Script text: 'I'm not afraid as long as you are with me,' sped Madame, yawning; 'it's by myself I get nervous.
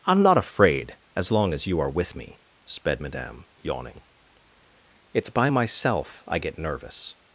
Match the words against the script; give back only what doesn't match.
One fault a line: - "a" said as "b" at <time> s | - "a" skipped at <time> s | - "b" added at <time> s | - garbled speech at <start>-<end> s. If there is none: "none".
none